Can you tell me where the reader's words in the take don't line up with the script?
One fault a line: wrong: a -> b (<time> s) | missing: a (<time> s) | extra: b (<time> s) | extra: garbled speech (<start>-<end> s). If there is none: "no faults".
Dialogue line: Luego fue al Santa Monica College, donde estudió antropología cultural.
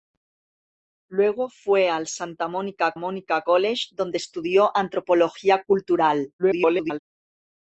extra: Monica (3.0 s)
extra: garbled speech (6.4-7.0 s)